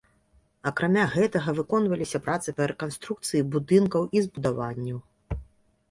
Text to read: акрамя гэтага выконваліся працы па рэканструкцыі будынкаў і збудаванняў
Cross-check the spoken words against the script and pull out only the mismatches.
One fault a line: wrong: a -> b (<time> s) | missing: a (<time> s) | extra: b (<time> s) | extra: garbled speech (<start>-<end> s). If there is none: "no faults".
no faults